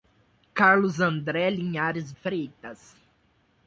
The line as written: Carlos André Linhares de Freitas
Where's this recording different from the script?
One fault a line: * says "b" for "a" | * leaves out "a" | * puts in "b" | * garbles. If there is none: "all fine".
* leaves out "de"